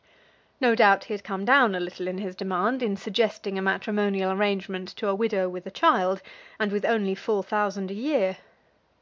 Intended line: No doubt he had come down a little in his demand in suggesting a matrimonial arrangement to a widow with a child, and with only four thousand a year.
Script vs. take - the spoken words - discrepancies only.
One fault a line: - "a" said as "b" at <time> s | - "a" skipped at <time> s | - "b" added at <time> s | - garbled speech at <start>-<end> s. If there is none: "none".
none